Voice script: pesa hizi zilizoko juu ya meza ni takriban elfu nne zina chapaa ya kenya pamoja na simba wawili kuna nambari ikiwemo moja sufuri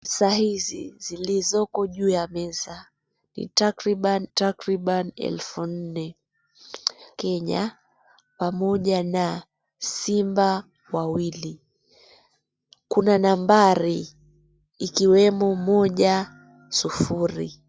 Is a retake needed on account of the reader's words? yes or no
yes